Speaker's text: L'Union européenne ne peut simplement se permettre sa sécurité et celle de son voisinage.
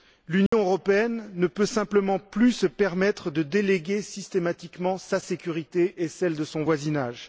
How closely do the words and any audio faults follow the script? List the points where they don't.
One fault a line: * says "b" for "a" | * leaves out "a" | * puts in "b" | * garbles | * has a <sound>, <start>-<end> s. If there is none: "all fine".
* has a dropout, 0.5-0.5 s
* puts in "plus"
* puts in "de déléguer systématiquement"